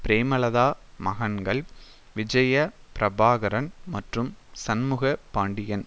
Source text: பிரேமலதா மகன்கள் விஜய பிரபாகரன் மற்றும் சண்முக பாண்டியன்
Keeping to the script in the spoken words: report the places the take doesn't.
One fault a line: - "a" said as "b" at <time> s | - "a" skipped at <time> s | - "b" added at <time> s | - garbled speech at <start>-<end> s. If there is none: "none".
none